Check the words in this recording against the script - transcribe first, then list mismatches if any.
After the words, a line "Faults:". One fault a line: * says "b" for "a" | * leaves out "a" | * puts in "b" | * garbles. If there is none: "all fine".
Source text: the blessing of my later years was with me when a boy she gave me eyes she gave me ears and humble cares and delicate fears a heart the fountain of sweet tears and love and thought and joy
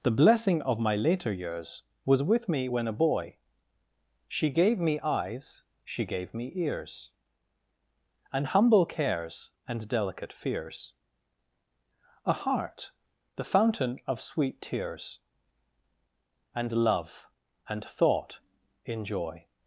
the blessing of my later years was with me when a boy she gave me eyes she gave me ears and humble cares and delicate fears a heart the fountain of sweet tears and love and thought in joy
Faults:
* says "in" for "and"